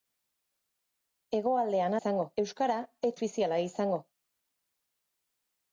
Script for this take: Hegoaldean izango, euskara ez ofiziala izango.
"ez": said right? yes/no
yes